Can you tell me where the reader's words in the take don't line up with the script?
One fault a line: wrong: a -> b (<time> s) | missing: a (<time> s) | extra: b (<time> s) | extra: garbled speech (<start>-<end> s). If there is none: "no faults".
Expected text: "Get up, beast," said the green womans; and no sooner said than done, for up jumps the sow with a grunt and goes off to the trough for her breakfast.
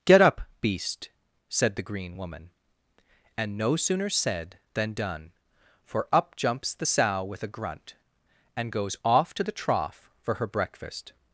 wrong: womans -> woman (2.2 s)